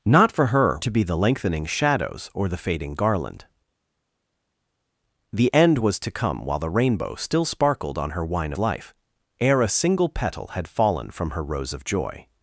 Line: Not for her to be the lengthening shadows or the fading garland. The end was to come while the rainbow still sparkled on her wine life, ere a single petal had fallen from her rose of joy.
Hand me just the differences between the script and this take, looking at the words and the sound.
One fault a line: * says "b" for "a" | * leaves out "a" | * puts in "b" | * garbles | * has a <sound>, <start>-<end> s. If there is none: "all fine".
all fine